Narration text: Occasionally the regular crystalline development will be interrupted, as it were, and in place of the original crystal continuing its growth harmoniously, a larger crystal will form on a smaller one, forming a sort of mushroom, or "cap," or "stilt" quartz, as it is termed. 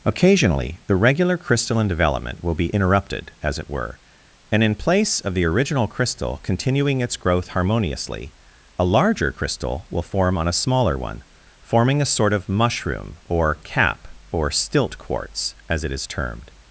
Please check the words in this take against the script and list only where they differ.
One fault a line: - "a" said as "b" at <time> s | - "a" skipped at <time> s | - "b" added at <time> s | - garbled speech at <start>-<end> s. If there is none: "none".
none